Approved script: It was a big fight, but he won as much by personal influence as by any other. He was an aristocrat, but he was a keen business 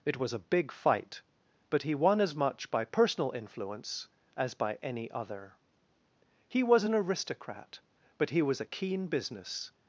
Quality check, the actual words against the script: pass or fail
pass